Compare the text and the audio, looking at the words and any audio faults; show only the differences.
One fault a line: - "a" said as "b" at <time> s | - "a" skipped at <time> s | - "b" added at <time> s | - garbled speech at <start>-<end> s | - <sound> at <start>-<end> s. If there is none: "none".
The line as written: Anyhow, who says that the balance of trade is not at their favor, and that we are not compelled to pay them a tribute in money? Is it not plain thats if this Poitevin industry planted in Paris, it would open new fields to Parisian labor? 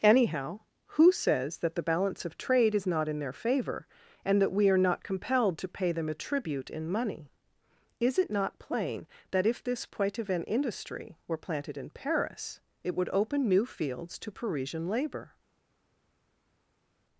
- "at" said as "in" at 3.1 s
- "thats" said as "that" at 9.3 s
- "were" added at 11.3 s